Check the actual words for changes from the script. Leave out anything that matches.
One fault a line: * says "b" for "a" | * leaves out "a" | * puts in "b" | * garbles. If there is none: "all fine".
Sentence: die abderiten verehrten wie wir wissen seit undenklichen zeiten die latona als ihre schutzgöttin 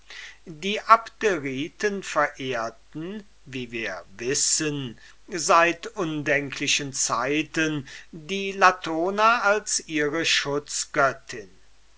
all fine